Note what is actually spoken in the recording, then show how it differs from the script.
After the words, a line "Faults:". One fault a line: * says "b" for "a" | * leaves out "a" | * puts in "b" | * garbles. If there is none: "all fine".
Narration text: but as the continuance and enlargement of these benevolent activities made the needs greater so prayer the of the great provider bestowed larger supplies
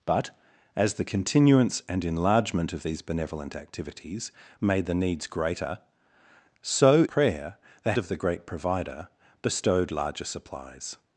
but as the continuance and enlargement of these benevolent activities made the needs greater so prayer the of the great provider bestowed larger supplies
Faults:
all fine